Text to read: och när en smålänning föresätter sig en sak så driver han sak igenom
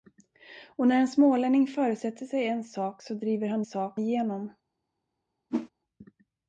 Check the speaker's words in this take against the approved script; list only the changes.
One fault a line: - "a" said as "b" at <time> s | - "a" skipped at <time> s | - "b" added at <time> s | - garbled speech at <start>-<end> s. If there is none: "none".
none